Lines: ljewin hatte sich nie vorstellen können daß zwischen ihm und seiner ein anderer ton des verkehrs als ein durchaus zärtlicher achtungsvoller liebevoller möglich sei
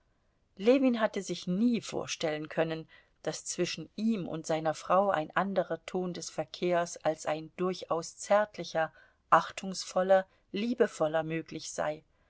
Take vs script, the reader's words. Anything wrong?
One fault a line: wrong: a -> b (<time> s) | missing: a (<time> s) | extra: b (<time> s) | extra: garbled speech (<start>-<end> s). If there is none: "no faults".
extra: frau (4.7 s)